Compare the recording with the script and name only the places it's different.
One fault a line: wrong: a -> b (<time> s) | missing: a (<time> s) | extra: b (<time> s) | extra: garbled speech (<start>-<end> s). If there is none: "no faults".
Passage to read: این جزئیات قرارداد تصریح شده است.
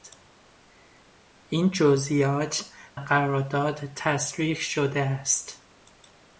no faults